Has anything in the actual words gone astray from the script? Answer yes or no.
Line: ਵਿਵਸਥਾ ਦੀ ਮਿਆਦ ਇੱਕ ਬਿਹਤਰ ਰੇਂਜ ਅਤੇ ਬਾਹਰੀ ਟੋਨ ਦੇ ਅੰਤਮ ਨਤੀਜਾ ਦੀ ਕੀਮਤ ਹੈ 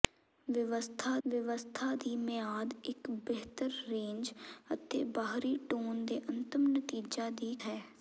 yes